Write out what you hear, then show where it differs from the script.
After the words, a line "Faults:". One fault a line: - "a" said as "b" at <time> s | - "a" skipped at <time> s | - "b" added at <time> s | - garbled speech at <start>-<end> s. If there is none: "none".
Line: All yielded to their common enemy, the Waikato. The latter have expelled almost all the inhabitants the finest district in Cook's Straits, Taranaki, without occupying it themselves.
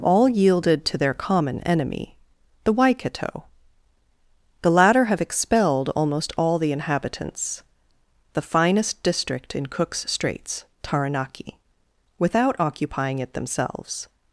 All yielded to their common enemy, the Waikato. The latter have expelled almost all the inhabitants the finest district in Cook's Straits, Taranaki, without occupying it themselves.
Faults:
none